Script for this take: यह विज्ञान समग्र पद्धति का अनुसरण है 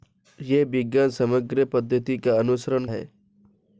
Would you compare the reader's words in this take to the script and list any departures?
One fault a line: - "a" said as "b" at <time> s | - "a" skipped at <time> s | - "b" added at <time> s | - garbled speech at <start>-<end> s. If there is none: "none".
none